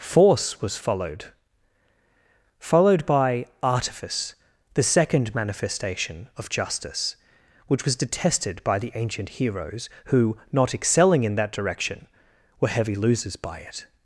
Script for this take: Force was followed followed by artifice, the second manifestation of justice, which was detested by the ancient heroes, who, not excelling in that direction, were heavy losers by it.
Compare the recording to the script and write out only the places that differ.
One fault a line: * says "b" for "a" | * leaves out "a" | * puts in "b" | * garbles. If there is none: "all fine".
all fine